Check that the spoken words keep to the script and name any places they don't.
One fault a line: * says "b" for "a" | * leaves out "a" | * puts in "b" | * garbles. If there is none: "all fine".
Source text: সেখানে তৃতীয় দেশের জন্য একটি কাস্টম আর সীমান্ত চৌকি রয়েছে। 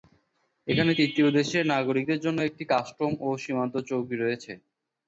* says "এখানে" for "সেখানে"
* puts in "নাগরিকদের"
* says "ও" for "আর"